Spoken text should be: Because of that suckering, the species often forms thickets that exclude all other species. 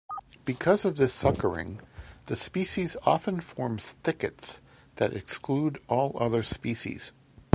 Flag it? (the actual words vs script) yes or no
yes